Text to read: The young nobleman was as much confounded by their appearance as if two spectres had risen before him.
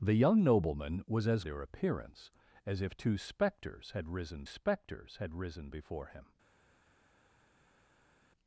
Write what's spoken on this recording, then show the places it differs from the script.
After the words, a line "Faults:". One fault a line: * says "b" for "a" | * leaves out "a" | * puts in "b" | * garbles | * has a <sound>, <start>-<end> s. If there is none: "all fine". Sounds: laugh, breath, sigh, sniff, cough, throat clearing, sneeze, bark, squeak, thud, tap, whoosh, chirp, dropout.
The young nobleman was as their appearance as if two spectres had risen spectres had risen before him.
Faults:
* leaves out "much confounded by"
* puts in "spectres had risen"